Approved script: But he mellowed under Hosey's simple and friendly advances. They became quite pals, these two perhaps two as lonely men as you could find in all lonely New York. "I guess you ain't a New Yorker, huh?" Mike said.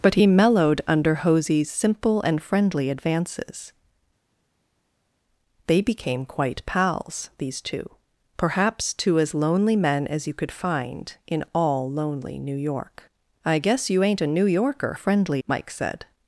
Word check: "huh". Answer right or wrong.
wrong